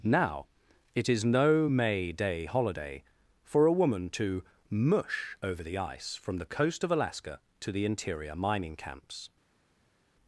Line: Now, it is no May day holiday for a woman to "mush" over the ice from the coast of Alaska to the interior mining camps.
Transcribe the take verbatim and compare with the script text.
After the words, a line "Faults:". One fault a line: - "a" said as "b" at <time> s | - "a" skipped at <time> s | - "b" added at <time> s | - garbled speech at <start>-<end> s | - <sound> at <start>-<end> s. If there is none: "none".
Now, it is no May day holiday for a woman to "mush" over the ice from the coast of Alaska to the interior mining camps.
Faults:
none